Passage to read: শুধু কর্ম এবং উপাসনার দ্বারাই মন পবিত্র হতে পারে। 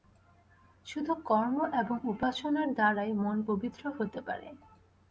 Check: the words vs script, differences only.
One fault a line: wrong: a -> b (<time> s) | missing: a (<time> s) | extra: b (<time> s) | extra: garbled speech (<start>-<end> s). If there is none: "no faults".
no faults